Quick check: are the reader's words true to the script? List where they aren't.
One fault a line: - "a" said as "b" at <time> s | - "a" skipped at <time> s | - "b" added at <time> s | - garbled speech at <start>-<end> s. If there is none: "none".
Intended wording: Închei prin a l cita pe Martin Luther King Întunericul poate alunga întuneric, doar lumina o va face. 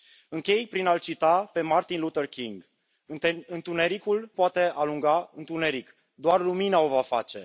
none